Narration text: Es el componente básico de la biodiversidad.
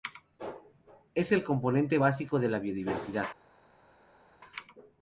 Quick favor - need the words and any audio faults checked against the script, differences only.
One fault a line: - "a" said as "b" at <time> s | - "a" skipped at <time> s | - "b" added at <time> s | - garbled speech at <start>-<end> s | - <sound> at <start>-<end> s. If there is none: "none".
none